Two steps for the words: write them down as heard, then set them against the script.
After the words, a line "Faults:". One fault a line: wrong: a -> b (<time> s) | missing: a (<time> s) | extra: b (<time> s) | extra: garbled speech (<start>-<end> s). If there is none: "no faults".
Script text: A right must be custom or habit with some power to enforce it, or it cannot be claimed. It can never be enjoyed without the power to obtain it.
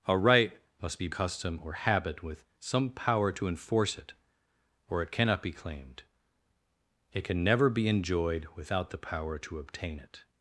A right must be custom or habit with some power to enforce it, or it cannot be claimed. It can never be enjoyed without the power to obtain it.
Faults:
no faults